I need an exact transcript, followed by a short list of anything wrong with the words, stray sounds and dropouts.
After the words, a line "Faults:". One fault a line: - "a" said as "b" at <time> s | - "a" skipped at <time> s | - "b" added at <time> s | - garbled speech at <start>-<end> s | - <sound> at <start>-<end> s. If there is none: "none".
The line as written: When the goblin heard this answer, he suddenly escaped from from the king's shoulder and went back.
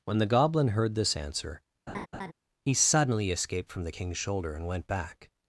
When the goblin heard this answer, he suddenly escaped from the king's shoulder and went back.
Faults:
- laugh at 1.9-2.3 s
- "from" skipped at 3.8 s